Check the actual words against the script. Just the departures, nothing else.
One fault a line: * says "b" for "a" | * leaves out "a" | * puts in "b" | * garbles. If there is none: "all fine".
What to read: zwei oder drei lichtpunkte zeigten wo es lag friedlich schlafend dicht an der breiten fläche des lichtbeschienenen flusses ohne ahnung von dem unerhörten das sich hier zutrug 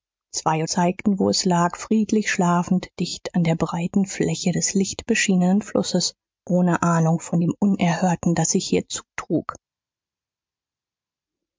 * leaves out "oder drei lichtpunkte"